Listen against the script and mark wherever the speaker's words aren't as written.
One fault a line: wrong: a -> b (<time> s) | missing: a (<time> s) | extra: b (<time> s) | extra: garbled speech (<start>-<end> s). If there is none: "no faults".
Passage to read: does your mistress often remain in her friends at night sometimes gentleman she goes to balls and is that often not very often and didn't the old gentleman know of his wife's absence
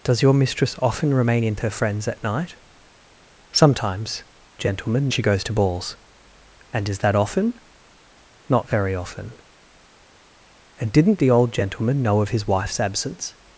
no faults